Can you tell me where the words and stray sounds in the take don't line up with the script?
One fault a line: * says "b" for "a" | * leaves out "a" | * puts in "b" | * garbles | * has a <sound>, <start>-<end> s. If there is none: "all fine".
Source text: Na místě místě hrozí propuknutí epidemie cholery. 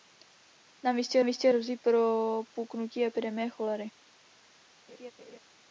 * has a laugh, 4.9-5.4 s